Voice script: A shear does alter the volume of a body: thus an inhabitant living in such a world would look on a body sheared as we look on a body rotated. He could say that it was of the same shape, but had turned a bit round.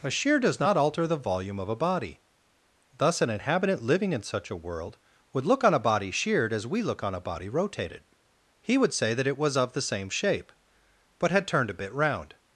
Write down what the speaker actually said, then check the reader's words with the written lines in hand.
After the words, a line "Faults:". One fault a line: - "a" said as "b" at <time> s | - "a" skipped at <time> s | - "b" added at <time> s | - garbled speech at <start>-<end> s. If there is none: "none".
A shear does not alter the volume of a body: thus an inhabitant living in such a world would look on a body sheared as we look on a body rotated. He would say that it was of the same shape, but had turned a bit round.
Faults:
- "not" added at 0.6 s
- "could" said as "would" at 8.8 s